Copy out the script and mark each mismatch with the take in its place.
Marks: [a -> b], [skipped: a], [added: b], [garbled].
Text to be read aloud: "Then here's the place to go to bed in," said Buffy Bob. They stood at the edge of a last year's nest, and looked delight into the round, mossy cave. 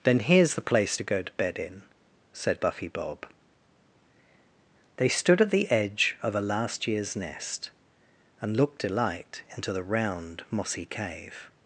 "Then here's the place to go to bed in," said Buffy Bob. They stood at the edge of a last year's nest, and looked delight into the round, mossy cave.